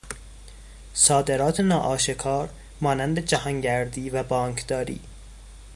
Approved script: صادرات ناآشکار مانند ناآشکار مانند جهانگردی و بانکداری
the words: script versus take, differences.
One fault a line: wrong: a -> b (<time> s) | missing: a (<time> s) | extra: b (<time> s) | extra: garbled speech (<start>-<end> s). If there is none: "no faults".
missing: ناآشکار مانند (3.2 s)